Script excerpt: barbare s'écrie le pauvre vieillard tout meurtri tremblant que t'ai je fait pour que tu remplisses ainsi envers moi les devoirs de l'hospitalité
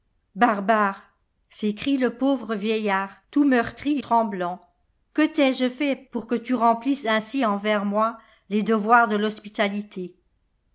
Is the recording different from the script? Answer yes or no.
no